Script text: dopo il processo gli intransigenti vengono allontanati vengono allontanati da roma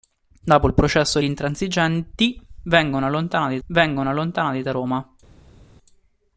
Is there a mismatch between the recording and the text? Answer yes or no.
no